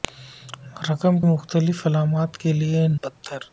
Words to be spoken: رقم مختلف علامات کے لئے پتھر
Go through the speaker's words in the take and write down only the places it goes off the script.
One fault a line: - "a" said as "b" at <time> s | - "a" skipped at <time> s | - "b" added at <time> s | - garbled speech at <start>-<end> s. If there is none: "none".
none